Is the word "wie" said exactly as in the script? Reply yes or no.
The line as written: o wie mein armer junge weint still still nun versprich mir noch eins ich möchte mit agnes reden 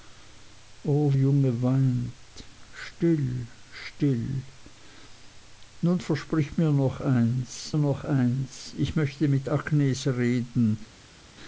no